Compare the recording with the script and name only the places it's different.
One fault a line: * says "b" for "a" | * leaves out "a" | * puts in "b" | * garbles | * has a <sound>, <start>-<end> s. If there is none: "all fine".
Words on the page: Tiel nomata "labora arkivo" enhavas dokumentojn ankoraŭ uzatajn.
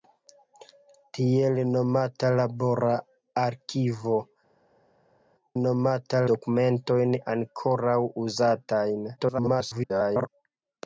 * says "nomata" for "enhavas"
* garbles